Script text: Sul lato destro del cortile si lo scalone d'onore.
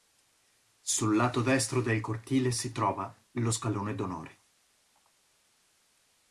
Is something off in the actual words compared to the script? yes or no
yes